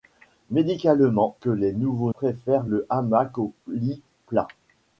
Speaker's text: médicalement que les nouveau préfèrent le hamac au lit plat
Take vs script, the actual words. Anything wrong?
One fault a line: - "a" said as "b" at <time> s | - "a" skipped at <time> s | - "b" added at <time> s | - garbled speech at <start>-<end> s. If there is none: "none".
none